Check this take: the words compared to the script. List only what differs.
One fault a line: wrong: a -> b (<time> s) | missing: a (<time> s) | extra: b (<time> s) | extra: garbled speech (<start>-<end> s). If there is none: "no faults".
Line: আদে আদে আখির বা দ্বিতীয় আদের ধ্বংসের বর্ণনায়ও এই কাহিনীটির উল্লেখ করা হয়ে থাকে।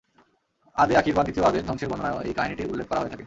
missing: আদে (0.9 s)